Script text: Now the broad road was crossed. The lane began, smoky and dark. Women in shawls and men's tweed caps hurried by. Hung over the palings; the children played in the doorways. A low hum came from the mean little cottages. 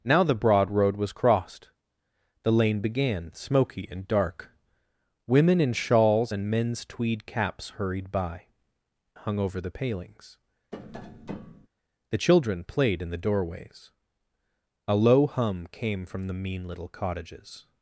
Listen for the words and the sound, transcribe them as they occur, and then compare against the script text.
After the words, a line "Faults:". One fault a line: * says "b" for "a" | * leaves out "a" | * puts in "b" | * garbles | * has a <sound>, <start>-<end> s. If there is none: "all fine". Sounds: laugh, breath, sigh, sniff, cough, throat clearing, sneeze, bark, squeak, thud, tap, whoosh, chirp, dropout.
Now the broad road was crossed. The lane began, smoky and dark. Women in shawls and men's tweed caps hurried by. Hung over the palings; the children played in the doorways. A low hum came from the mean little cottages.
Faults:
* has a tap, 10.7-11.7 s